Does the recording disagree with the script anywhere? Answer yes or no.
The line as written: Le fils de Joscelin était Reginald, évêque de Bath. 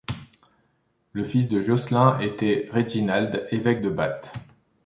no